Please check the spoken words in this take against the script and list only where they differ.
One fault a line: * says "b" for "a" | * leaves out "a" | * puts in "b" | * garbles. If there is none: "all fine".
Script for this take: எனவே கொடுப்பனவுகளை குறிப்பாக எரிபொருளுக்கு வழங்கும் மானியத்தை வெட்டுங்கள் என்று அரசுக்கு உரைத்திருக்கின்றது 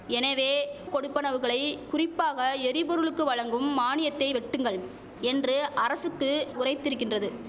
all fine